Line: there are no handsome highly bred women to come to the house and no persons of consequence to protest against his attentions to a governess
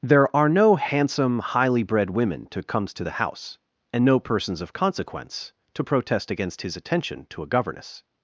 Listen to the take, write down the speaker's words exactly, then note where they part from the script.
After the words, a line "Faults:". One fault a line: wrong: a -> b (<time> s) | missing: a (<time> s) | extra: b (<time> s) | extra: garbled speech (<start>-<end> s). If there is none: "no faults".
there are no handsome highly bred women to comes to the house and no persons of consequence to protest against his attention to a governess
Faults:
wrong: come -> comes (2.6 s)
wrong: attentions -> attention (6.7 s)